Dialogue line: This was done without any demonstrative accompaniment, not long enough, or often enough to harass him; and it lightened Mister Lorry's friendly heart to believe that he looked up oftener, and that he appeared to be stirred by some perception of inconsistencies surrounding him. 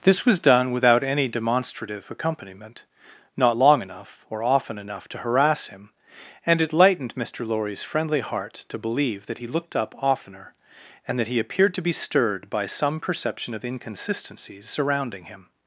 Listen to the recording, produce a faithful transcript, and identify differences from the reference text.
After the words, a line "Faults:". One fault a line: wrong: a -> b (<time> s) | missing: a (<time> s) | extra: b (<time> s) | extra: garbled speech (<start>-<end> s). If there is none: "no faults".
This was done without any demonstrative accompaniment, not long enough, or often enough to harass him; and it lightened Mister Lorry's friendly heart to believe that he looked up oftener, and that he appeared to be stirred by some perception of inconsistencies surrounding him.
Faults:
no faults